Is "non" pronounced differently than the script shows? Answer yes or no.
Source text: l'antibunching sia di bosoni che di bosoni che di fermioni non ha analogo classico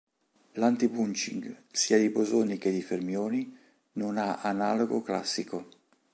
no